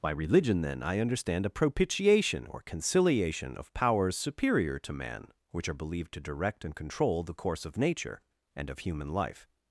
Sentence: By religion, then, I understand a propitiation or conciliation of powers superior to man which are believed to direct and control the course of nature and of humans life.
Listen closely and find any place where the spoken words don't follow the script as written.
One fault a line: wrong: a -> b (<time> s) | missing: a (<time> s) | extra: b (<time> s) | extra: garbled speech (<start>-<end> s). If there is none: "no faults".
wrong: humans -> human (8.8 s)